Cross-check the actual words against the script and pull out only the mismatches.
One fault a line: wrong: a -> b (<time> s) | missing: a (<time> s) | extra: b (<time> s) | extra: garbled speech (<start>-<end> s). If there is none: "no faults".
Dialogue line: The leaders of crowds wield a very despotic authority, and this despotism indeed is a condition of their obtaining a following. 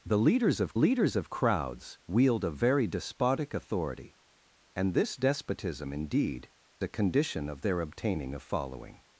extra: leaders of (0.7 s)
missing: is (6.5 s)